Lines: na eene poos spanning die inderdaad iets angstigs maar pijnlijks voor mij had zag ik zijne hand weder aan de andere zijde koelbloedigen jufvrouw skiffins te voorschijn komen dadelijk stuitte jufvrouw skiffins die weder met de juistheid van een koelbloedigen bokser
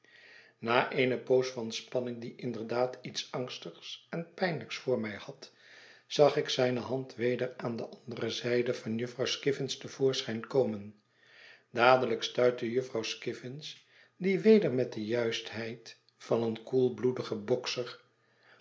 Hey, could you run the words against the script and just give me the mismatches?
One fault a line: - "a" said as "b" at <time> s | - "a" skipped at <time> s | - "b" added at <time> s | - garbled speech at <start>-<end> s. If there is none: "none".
- "van" added at 1.6 s
- "maar" said as "en" at 4.1 s
- "koelbloedigen" said as "van" at 8.7 s